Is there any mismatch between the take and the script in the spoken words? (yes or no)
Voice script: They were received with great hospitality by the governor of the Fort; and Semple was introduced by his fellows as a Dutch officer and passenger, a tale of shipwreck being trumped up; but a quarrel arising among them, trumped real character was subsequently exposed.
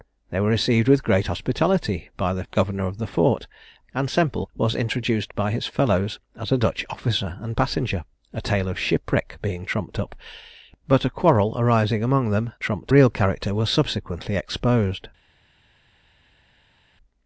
no